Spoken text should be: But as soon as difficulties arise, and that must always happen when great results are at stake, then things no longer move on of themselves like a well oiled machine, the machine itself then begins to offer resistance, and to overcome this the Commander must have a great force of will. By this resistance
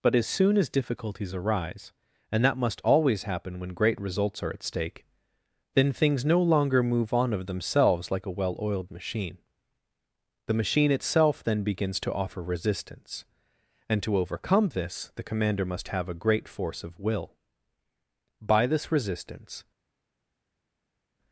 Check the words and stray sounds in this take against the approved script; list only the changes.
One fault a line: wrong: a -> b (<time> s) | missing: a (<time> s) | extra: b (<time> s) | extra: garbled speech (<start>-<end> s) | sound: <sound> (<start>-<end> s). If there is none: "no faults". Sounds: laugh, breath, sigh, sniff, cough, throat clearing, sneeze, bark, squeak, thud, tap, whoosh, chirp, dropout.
no faults